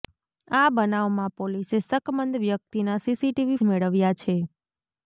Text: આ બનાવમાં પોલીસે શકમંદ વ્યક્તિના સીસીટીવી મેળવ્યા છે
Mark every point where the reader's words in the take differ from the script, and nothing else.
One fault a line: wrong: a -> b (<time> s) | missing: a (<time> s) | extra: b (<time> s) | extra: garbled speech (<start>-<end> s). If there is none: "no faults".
no faults